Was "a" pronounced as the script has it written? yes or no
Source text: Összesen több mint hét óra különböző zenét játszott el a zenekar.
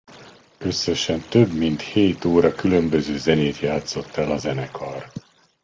yes